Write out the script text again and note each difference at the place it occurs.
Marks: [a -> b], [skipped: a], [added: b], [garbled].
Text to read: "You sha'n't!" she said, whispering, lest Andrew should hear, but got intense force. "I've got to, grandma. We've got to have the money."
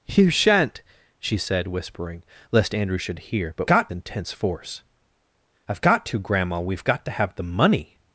"You sha'n't!" she said, whispering, lest Andrew should hear, but got intense force. "I've got to, grandma. We've got to have the money."